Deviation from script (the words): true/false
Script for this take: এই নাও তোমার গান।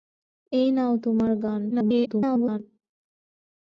true